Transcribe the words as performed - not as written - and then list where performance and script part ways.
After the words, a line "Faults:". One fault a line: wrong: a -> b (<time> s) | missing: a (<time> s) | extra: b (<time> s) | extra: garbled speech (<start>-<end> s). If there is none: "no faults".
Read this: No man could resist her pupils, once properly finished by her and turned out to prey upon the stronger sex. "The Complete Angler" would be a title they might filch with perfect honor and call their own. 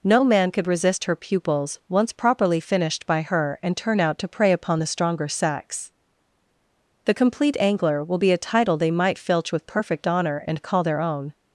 No man could resist her pupils, once properly finished by her and turn out to prey upon the stronger sex. "The Complete Angler" will be a title they might filch with perfect honor and call their own.
Faults:
wrong: turned -> turn (3.8 s)
wrong: would -> will (8.0 s)